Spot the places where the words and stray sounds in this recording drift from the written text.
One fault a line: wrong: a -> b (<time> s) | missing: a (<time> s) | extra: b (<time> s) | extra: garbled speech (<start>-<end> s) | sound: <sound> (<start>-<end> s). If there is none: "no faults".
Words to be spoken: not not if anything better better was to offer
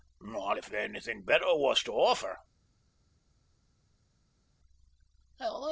missing: not (0.6 s)
missing: better (1.6 s)